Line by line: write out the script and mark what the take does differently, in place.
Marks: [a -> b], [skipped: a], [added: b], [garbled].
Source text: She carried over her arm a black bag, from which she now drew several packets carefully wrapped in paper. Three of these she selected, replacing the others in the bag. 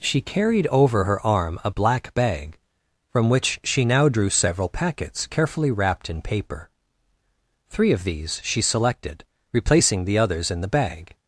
She carried over her arm a black bag, from which she now drew several packets carefully wrapped in paper. Three of these she selected, replacing the others in the bag.